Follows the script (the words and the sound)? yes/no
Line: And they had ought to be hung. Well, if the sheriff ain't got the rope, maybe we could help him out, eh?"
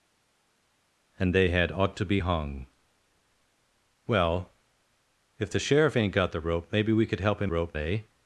no